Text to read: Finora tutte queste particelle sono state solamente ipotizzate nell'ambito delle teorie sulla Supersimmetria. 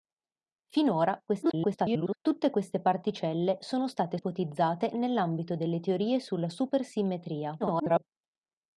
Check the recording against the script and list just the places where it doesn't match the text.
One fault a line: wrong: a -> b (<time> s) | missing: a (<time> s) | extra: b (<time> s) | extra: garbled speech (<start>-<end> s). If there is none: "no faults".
extra: garbled speech (1.3-2.2 s)
missing: solamente (4.2 s)
extra: garbled speech (7.6-8.0 s)